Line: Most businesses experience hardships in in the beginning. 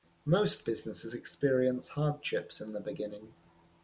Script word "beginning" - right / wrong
right